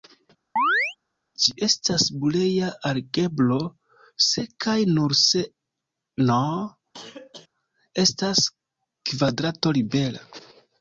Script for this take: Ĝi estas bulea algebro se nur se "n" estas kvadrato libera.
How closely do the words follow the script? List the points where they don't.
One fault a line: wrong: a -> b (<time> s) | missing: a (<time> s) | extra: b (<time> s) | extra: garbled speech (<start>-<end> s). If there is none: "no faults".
extra: kaj (4.6 s)